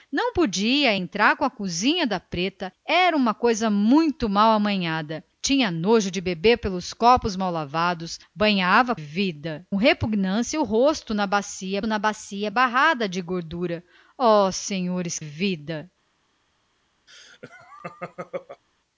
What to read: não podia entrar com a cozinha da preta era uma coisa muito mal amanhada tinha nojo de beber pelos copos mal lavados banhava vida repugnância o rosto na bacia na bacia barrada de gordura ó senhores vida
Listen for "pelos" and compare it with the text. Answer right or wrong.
right